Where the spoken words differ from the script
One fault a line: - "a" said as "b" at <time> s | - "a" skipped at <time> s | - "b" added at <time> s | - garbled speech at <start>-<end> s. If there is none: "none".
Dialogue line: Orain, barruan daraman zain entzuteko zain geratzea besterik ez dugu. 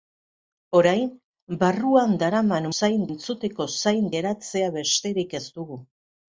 none